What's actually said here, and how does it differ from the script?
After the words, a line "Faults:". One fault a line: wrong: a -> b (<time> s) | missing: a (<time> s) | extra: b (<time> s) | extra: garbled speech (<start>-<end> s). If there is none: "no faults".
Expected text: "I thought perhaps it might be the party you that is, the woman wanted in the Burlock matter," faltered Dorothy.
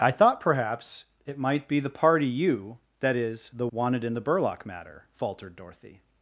"I thought perhaps it might be the party you that is, the wanted in the Burlock matter," faltered Dorothy.
Faults:
missing: woman (3.7 s)